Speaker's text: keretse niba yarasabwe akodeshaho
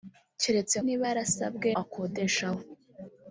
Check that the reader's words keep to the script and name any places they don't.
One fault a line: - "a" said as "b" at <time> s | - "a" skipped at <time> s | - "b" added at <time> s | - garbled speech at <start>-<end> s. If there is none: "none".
none